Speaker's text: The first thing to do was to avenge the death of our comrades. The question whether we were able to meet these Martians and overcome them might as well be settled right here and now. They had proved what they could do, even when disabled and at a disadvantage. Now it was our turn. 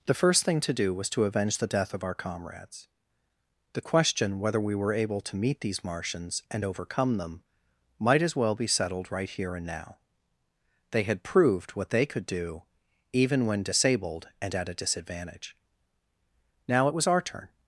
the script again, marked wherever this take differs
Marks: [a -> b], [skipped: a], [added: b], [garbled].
The first thing to do was to avenge the death of our comrades. The question whether we were able to meet these Martians and overcome them might as well be settled right here and now. They had proved what they could do, even when disabled and at a disadvantage. Now it was our turn.